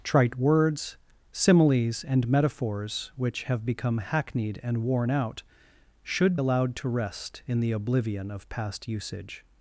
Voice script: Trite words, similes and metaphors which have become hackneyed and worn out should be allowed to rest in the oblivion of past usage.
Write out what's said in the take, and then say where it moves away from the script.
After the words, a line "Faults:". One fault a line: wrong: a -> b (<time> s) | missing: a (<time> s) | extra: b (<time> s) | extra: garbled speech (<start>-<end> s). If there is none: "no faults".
Trite words, similes and metaphors which have become hackneyed and worn out should allowed to rest in the oblivion of past usage.
Faults:
missing: be (6.4 s)